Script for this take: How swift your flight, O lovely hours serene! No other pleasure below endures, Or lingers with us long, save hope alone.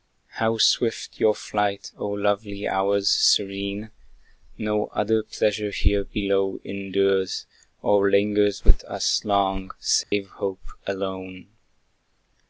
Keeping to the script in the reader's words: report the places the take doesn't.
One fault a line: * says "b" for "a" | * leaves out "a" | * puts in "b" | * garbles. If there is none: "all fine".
* puts in "here"